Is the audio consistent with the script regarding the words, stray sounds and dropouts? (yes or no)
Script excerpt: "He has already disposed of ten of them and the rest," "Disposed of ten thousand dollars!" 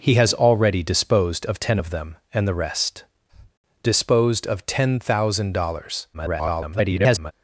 no